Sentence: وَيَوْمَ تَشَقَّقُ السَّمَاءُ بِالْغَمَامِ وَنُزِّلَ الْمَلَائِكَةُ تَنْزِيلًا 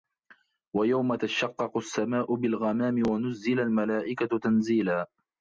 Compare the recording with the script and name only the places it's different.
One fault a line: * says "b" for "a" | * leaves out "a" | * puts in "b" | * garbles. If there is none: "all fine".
all fine